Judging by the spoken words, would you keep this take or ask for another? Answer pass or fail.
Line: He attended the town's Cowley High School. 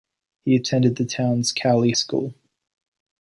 fail